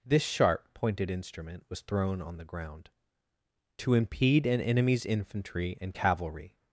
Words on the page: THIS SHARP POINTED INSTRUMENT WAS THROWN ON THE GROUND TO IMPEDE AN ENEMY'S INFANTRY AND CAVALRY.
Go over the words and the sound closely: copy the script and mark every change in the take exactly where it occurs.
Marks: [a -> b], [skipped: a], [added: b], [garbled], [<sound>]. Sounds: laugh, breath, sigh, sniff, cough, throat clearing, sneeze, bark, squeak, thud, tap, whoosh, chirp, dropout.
THIS SHARP POINTED INSTRUMENT WAS THROWN ON THE GROUND TO IMPEDE AN ENEMY'S INFANTRY AND CAVALRY.